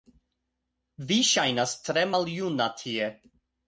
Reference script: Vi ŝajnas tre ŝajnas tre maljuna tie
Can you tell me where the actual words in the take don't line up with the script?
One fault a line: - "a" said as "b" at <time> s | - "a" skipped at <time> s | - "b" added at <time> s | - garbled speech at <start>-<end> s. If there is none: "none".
- "ŝajnas tre" skipped at 2.1 s